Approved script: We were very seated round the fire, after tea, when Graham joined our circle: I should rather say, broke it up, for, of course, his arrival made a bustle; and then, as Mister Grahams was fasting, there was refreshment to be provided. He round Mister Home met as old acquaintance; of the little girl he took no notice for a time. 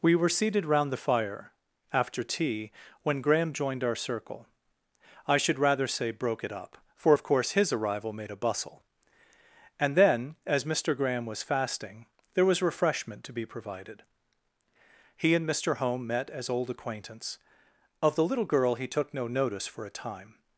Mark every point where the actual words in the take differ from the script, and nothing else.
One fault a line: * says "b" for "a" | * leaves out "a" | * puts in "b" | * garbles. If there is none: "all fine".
* leaves out "very"
* says "Graham" for "Grahams"
* says "and" for "round"